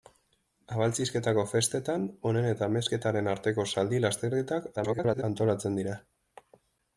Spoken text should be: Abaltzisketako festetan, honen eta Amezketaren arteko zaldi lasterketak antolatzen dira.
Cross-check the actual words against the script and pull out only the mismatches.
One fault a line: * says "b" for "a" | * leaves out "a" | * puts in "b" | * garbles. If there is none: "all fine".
* garbles